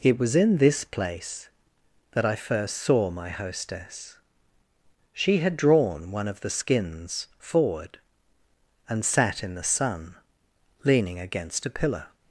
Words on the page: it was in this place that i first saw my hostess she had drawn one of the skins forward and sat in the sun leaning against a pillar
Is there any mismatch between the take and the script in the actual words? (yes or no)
no